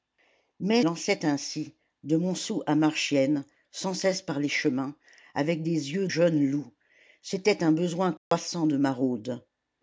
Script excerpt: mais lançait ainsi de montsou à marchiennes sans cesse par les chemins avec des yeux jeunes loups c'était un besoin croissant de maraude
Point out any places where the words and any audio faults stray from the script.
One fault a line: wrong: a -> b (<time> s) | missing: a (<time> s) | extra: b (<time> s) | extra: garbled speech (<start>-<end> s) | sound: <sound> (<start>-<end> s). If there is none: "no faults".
sound: dropout (8.2-8.3 s)